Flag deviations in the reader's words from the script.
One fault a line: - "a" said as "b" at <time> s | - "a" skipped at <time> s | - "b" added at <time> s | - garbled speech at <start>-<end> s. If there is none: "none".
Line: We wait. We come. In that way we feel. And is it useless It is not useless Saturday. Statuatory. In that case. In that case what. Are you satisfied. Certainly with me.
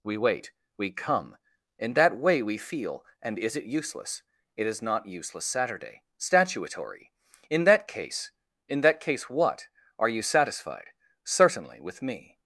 none